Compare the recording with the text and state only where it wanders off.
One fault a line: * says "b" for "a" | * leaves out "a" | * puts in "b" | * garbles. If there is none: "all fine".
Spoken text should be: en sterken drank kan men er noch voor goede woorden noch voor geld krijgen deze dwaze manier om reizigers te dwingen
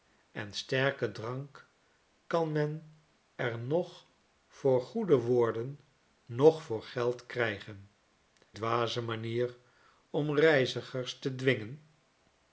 * leaves out "deze"